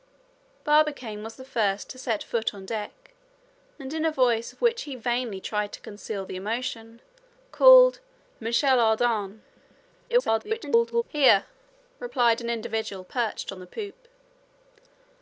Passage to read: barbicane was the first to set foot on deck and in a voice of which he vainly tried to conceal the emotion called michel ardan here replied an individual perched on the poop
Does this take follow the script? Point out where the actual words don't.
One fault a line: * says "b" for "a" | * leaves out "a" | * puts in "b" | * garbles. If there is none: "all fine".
* garbles